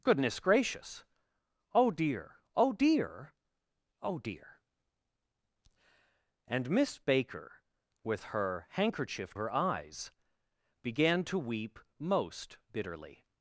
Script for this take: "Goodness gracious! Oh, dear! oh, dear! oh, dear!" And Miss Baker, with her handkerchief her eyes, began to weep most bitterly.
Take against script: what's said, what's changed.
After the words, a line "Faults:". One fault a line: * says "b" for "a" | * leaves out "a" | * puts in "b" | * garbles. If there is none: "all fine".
"Goodness gracious! Oh, dear! oh, dear! oh, dear!" And Miss Baker, with her handkerchief her eyes, began to weep most bitterly.
Faults:
all fine